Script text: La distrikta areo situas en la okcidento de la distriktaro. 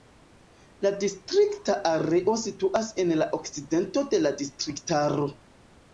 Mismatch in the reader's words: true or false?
false